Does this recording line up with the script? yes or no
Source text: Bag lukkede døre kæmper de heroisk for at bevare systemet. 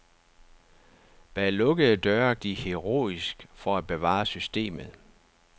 no